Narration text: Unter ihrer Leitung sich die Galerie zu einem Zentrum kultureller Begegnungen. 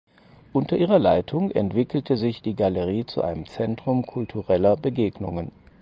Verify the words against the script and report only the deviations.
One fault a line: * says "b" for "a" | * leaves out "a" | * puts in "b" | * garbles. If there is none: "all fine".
* puts in "entwickelte"